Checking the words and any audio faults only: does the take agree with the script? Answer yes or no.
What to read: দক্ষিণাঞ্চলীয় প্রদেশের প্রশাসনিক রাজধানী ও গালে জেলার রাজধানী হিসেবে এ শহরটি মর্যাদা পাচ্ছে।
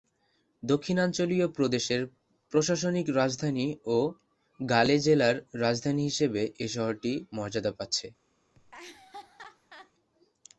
no